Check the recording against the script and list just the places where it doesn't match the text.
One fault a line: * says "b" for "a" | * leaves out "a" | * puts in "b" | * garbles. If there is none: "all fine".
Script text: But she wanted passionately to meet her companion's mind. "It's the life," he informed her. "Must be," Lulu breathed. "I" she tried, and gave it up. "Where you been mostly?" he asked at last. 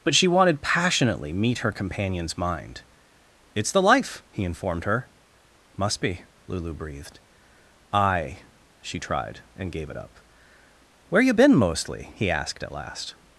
* leaves out "to"